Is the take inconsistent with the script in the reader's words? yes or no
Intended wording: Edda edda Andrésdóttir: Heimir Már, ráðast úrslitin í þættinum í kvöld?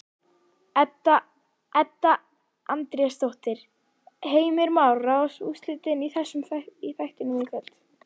no